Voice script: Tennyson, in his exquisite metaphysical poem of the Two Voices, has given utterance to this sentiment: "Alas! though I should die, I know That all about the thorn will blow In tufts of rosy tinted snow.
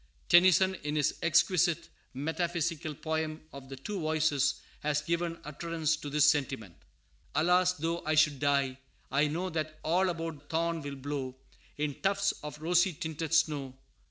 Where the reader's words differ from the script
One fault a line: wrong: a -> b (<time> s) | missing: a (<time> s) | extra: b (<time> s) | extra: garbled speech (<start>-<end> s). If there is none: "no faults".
missing: the (10.4 s)